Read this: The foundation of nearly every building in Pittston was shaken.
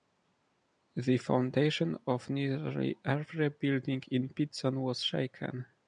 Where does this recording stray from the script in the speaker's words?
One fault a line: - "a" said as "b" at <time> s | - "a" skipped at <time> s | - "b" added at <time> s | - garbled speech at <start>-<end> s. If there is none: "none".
none